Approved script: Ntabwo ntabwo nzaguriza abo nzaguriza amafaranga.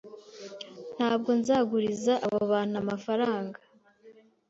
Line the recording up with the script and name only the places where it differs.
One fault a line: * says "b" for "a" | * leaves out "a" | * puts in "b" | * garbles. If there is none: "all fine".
* leaves out "ntabwo"
* says "bantu" for "nzaguriza"